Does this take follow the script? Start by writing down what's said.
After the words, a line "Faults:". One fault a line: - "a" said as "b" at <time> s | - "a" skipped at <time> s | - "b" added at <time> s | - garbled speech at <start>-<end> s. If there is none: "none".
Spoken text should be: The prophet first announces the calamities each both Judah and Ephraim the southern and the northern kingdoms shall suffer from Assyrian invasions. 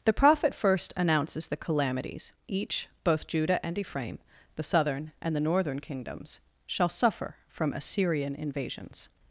The prophet first announces the calamities each both Judah and Ephraim the southern and the northern kingdoms shall suffer from Assyrian invasions.
Faults:
none